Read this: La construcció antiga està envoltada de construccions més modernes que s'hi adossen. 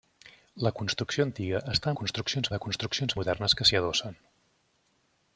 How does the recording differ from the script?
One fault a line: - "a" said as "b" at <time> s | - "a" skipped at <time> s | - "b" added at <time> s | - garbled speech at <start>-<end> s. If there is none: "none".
- "envoltada" said as "construccions" at 2.0 s
- "més" skipped at 3.2 s